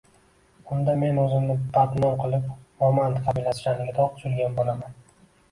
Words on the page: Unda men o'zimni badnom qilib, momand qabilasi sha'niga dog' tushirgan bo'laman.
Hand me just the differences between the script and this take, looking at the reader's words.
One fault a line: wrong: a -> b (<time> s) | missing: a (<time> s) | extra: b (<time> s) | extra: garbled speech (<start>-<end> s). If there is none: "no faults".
no faults